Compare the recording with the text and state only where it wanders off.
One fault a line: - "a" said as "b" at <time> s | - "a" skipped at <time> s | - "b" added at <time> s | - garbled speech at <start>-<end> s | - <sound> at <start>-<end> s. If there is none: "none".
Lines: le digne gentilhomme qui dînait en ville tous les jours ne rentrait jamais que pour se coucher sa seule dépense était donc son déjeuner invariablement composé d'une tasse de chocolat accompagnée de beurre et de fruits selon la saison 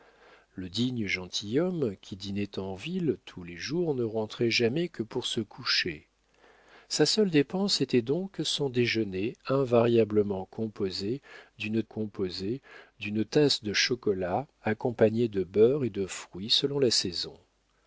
- "composé d'une" added at 11.8 s